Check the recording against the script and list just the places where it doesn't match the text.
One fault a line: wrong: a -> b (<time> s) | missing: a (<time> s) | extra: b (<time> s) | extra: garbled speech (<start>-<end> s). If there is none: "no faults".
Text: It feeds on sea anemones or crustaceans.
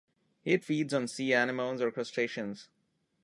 no faults